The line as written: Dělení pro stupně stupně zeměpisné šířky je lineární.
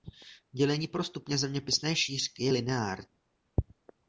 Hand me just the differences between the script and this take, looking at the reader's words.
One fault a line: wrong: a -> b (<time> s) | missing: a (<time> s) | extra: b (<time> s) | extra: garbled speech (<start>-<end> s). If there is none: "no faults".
missing: stupně (1.4 s)